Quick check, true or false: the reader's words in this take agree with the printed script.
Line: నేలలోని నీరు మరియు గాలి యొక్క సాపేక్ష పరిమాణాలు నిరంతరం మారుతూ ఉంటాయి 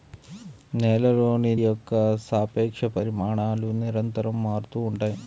false